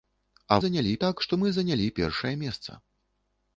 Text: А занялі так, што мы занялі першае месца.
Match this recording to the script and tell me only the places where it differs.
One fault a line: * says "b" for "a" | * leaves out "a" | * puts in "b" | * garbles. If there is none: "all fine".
all fine